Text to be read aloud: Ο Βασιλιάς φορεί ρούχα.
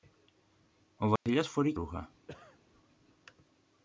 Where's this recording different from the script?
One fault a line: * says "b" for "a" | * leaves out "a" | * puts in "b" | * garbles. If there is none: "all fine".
all fine